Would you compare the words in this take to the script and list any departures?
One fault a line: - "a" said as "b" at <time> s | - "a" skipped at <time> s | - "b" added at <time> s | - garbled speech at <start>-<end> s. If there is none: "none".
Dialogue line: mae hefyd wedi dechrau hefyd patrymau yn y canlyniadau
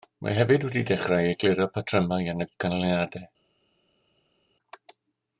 - "hefyd" said as "egluro" at 1.3 s